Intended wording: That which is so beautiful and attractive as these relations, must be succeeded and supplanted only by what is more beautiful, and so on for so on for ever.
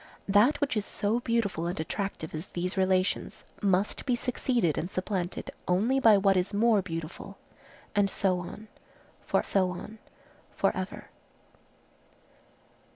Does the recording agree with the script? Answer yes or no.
yes